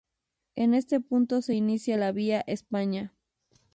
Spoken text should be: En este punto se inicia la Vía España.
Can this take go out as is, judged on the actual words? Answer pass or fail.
pass